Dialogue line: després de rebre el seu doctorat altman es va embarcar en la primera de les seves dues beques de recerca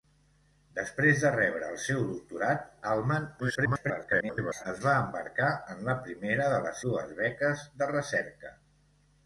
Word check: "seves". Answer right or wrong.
wrong